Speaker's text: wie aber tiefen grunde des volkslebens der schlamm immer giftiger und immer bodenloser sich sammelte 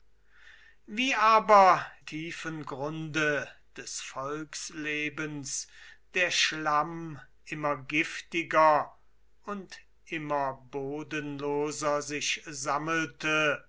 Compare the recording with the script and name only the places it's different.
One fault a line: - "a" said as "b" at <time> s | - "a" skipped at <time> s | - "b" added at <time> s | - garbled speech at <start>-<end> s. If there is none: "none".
none